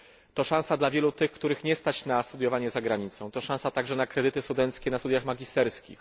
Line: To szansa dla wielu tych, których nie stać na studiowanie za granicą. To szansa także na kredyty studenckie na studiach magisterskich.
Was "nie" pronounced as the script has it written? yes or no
yes